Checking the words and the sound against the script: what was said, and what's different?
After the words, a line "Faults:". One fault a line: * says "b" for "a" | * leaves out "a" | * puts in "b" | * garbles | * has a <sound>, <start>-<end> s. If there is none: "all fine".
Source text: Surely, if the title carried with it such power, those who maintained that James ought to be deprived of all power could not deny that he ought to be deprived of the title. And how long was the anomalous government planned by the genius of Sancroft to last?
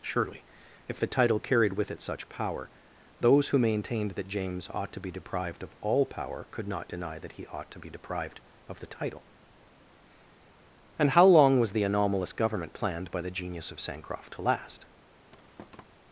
Surely, if the title carried with it such power, those who maintained that James ought to be deprived of all power could not deny that he ought to be deprived of the title. And how long was the anomalous government planned by the genius of Sancroft to last?
Faults:
* has a thud, 15.3-15.8 s